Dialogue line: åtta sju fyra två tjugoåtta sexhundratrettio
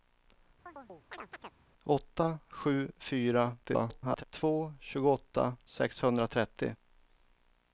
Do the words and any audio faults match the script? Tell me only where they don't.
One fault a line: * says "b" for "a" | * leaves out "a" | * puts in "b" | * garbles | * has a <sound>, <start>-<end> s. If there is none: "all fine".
* has a chirp, 0.7-1.5 s
* garbles